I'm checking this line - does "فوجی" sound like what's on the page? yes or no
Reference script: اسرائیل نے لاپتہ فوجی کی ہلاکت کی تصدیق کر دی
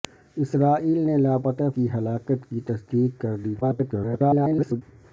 no